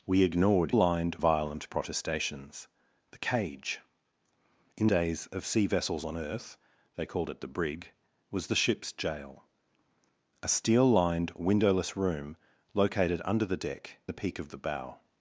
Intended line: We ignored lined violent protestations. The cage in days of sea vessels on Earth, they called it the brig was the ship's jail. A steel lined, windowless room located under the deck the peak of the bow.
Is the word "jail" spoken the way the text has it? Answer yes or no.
yes